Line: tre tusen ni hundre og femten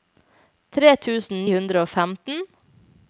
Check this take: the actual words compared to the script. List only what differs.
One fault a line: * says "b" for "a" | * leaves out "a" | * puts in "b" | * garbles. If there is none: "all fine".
* leaves out "ni"